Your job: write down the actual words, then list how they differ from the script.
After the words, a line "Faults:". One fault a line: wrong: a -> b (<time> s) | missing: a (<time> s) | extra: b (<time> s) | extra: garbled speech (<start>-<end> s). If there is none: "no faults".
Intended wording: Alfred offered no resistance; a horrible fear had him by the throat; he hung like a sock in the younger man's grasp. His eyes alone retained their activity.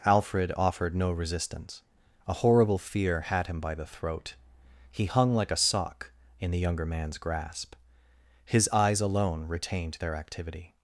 Alfred offered no resistance; a horrible fear had him by the throat; he hung like a sock in the younger man's grasp. His eyes alone retained their activity.
Faults:
no faults